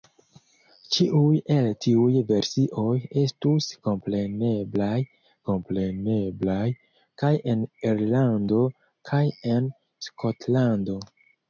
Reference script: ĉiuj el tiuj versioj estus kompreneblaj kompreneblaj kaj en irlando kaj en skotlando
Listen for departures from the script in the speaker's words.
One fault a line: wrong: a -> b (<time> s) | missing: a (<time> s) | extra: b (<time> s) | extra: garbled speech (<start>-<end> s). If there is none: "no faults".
no faults